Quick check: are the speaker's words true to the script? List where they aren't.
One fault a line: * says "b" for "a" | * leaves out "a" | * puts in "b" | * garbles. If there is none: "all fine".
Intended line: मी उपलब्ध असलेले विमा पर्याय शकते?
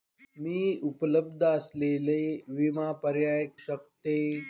all fine